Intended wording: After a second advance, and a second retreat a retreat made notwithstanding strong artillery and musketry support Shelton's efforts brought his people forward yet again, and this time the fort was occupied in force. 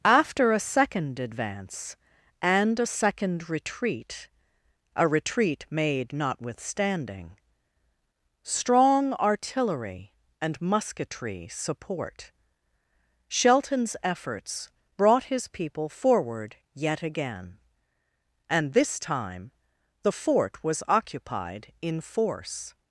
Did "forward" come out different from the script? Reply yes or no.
no